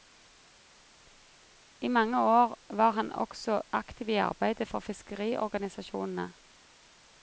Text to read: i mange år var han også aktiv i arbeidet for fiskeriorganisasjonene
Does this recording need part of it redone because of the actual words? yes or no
no